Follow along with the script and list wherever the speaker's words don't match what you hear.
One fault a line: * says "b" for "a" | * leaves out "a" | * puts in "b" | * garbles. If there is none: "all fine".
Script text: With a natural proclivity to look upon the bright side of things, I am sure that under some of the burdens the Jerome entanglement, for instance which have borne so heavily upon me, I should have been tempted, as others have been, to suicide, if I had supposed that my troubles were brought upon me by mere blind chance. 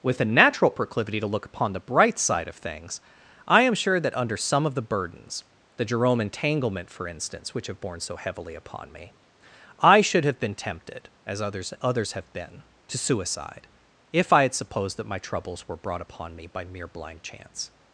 * puts in "others"